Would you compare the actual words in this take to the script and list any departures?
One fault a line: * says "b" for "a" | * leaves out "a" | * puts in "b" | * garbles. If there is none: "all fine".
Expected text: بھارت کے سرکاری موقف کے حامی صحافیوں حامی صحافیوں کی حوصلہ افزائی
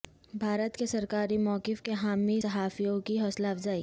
* leaves out "حامی صحافیوں"